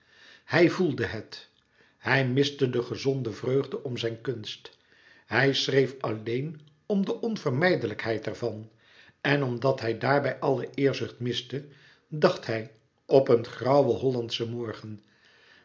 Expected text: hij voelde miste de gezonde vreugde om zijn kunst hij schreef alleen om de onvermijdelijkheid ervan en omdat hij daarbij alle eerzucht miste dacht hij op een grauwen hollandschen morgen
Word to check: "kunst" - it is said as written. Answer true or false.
true